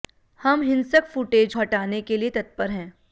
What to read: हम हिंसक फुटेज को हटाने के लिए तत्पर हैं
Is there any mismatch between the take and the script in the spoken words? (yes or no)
yes